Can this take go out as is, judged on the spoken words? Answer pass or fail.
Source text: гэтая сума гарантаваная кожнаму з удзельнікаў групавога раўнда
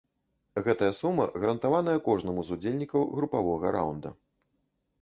pass